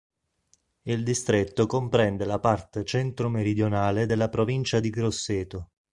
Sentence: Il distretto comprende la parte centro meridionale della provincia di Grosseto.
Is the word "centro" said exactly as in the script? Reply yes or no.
yes